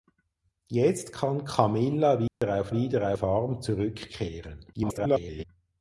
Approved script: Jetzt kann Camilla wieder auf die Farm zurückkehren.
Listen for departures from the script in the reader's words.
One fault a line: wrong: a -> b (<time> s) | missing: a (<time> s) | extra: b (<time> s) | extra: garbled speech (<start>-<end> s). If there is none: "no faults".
wrong: die -> wieder (2.7 s)
extra: garbled speech (4.7-5.4 s)